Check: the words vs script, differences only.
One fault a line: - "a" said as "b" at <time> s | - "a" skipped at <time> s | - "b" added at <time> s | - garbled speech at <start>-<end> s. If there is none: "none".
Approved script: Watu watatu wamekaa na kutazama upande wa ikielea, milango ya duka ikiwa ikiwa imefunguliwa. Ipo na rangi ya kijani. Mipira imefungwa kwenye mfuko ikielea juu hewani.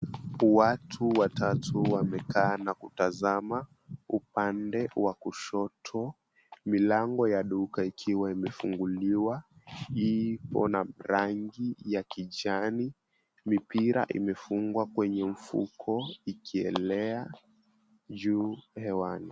- "ikielea" said as "kushoto" at 5.1 s
- "ikiwa" skipped at 8.3 s